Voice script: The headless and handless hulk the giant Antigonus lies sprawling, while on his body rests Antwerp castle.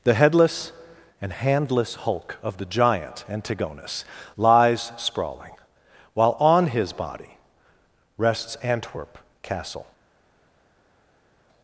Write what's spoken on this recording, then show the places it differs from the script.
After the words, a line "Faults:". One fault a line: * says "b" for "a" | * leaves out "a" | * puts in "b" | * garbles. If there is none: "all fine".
The headless and handless hulk of the giant Antigonus lies sprawling, while on his body rests Antwerp castle.
Faults:
* puts in "of"